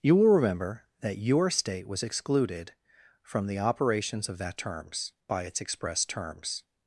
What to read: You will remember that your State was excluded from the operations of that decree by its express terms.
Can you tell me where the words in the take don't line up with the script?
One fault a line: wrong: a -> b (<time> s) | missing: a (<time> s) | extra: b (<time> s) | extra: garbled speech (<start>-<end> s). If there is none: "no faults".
wrong: decree -> terms (4.5 s)